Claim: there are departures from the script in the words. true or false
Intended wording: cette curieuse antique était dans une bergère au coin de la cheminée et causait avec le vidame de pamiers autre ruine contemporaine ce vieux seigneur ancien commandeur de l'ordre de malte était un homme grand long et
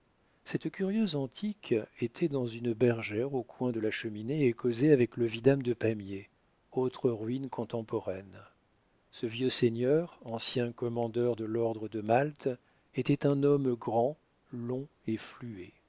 false